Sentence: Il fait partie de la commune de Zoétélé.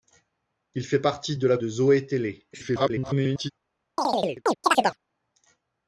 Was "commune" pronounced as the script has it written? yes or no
no